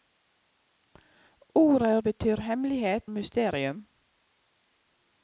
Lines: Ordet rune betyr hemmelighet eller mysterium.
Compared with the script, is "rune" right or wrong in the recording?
wrong